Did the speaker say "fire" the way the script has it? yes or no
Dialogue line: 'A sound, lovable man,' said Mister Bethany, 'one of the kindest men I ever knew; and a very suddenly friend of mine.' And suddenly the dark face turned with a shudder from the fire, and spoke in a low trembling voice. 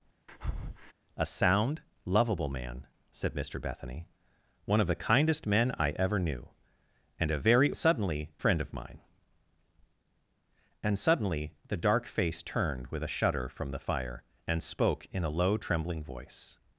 yes